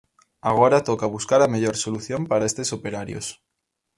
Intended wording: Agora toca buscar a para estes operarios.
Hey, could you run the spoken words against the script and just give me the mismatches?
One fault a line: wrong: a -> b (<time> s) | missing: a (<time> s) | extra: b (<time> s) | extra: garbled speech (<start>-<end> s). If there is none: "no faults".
extra: mellor solución (1.5 s)